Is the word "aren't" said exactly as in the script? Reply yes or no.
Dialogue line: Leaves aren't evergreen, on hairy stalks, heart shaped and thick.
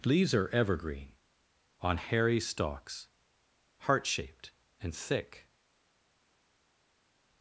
no